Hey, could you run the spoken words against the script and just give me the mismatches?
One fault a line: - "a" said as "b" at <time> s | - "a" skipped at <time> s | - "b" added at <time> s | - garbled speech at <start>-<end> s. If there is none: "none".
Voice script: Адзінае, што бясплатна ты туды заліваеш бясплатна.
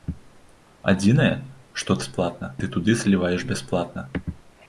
none